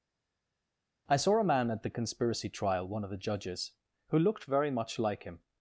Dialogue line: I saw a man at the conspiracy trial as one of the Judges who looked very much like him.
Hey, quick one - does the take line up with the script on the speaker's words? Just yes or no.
no